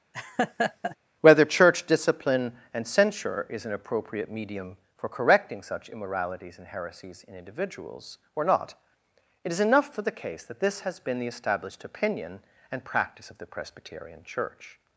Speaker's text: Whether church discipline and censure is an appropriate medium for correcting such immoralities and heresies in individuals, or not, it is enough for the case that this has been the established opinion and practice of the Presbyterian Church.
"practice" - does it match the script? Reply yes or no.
yes